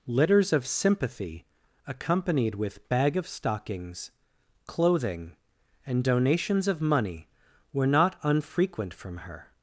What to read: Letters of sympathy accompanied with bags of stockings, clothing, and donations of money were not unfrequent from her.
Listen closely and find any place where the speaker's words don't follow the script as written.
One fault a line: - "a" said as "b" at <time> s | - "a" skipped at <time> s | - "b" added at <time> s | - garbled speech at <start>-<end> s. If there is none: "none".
- "bags" said as "bag" at 2.9 s